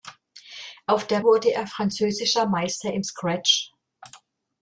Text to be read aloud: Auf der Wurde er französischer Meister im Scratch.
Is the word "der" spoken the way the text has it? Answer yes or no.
yes